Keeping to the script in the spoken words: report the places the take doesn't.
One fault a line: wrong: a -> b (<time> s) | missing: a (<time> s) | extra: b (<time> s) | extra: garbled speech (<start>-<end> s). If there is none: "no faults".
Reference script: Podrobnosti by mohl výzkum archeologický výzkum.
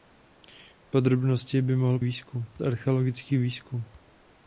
no faults